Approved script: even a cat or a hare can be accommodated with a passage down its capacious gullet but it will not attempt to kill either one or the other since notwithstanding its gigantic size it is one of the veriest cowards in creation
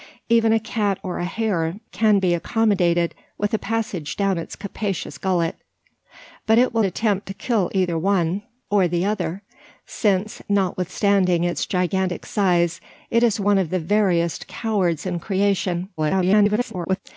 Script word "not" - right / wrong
wrong